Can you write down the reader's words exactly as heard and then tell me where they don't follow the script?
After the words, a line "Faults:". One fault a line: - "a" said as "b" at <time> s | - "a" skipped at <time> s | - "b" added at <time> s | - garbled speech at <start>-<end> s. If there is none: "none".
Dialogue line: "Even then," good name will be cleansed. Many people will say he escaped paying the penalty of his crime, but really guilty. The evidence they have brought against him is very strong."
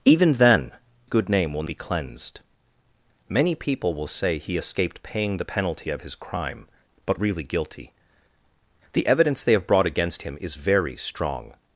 "Even then," good name will be cleansed. Many people will say he escaped paying the penalty of his crime, but really guilty. The evidence they have brought against him is very strong."
Faults:
none